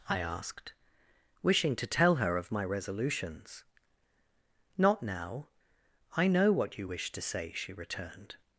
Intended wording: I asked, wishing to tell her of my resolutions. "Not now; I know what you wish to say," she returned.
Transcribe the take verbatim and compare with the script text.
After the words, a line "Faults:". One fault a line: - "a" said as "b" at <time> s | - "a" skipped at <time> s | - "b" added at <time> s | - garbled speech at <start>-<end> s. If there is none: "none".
I asked, wishing to tell her of my resolutions. "Not now; I know what you wish to say," she returned.
Faults:
none